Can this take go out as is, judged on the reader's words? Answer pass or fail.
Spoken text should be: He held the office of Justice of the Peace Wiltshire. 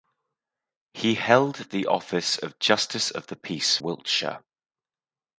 pass